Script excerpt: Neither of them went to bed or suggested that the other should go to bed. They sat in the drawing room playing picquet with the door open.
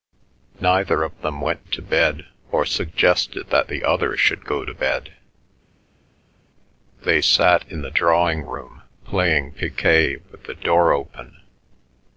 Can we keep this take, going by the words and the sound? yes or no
yes